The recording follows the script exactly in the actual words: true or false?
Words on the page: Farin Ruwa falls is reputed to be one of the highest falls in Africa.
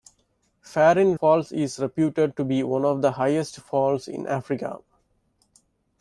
false